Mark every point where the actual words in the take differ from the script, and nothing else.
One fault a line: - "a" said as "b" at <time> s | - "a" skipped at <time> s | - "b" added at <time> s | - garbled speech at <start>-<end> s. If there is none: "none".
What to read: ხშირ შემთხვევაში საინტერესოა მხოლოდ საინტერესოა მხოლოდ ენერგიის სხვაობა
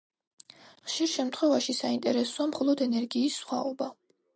- "საინტერესოა მხოლოდ" skipped at 2.9 s